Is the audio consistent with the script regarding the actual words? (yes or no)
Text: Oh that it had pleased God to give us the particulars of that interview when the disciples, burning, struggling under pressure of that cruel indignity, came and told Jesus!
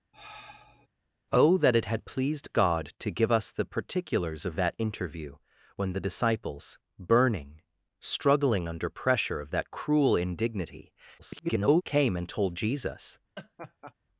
no